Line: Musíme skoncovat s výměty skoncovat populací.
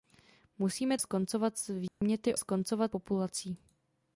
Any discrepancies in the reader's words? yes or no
no